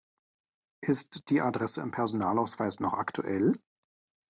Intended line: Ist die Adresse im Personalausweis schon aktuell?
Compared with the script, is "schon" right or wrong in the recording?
wrong